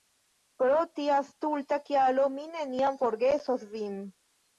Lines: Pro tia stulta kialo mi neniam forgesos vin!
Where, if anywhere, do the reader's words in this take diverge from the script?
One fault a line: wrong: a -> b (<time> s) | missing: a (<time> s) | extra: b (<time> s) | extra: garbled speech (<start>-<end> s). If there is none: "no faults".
no faults